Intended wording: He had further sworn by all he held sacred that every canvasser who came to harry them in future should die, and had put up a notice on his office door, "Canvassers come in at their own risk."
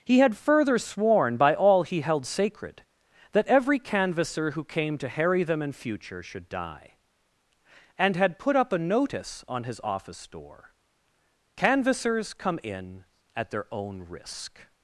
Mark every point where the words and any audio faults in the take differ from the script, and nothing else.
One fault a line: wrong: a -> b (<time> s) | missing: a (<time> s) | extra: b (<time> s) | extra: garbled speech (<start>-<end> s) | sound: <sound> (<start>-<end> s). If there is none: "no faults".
no faults